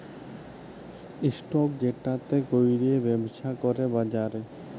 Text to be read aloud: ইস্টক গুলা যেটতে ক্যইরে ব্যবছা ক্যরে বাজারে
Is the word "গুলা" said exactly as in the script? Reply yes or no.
no